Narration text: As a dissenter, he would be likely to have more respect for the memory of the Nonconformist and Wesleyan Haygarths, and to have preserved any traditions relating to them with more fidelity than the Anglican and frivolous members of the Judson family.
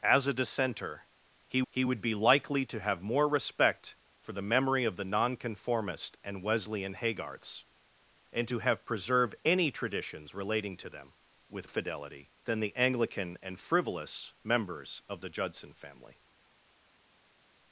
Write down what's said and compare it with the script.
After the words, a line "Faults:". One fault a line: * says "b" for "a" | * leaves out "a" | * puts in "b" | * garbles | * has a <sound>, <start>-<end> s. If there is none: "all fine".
As a dissenter, he he would be likely to have more respect for the memory of the Nonconformist and Wesleyan Haygarths, and to have preserved any traditions relating to them with fidelity than the Anglican and frivolous members of the Judson family.
Faults:
* puts in "he"
* leaves out "more"